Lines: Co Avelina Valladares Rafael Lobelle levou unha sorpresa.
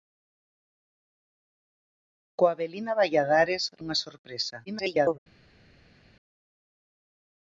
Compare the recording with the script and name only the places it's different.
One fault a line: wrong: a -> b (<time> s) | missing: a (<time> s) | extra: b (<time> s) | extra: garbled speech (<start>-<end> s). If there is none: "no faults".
missing: Rafael Lobelle levou (3.6 s)
extra: garbled speech (4.7-5.2 s)